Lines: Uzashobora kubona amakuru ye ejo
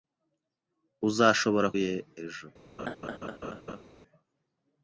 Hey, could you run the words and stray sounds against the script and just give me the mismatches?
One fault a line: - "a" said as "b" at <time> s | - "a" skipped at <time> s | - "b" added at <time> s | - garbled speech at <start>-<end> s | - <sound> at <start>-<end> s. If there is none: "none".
- "kubona amakuru" skipped at 1.7 s
- laugh at 2.8-3.8 s